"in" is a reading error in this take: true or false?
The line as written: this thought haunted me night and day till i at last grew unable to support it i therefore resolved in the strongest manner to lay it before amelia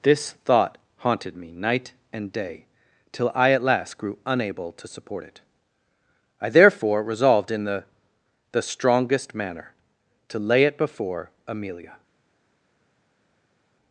false